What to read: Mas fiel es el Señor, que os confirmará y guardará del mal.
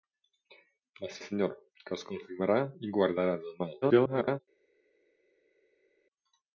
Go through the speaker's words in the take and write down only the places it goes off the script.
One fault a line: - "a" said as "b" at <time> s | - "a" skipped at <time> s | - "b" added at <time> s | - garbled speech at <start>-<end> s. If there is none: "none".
- "fiel es el" skipped at 1.2 s
- garbled speech at 3.8-4.4 s